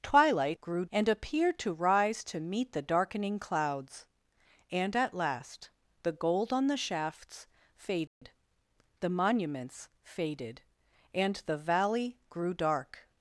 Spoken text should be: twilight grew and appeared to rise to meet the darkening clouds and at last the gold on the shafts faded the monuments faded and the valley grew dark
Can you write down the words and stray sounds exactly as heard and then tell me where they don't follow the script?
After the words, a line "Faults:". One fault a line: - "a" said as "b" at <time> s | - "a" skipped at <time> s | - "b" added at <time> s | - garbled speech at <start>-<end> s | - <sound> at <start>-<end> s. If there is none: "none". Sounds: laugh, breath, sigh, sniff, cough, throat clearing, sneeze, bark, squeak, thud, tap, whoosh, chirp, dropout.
twilight grew and appeared to rise to meet the darkening clouds and at last the gold on the shafts faded the monuments faded and the valley grew dark
Faults:
- dropout at 8.1-8.2 s